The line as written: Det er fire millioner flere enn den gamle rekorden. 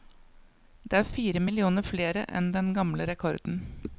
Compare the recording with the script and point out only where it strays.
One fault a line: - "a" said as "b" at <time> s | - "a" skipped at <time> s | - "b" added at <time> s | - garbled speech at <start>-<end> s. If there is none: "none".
none